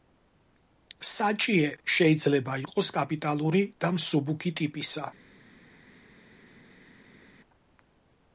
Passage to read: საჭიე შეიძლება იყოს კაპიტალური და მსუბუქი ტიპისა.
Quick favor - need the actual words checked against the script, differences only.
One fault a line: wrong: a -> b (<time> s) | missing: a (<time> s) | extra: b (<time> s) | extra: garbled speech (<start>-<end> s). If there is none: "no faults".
no faults